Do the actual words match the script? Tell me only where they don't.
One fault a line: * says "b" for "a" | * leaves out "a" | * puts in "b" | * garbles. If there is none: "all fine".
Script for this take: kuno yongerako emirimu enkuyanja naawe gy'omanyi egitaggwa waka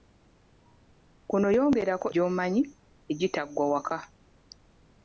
* leaves out "emirimu enkuyanja naawe"